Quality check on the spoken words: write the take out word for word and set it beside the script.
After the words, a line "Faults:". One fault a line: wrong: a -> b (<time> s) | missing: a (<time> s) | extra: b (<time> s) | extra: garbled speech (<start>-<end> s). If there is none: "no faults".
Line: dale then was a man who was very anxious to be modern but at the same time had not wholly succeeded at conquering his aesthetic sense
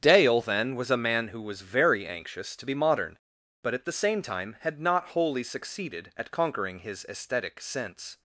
dale then was a man who was very anxious to be modern but at the same time had not wholly succeeded at conquering his aesthetic sense
Faults:
no faults